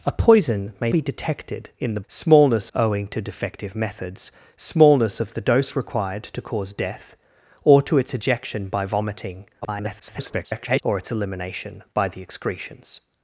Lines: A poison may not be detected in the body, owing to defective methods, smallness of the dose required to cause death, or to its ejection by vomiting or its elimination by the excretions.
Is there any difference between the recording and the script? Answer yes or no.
yes